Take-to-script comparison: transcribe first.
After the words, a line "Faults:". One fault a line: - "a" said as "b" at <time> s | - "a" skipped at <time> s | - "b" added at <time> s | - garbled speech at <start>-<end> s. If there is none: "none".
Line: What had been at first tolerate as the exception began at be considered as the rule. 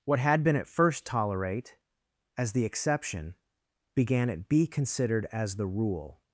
What had been at first tolerate as the exception began at be considered as the rule.
Faults:
none